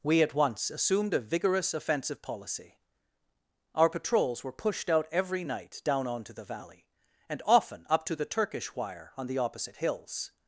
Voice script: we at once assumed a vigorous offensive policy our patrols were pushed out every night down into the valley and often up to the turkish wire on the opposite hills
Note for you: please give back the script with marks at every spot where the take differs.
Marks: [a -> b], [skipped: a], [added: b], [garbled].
we at once assumed a vigorous offensive policy our patrols were pushed out every night down [into -> onto] the valley and often up to the turkish wire on the opposite hills